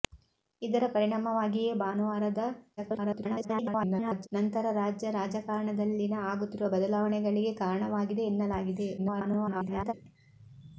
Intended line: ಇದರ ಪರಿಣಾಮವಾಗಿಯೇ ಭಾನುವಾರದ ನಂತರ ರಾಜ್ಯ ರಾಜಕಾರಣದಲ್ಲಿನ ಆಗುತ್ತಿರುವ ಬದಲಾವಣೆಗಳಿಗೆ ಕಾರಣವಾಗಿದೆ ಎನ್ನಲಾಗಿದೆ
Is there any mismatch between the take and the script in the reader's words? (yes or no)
yes